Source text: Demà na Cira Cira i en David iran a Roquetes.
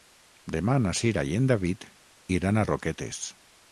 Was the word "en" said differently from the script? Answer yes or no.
no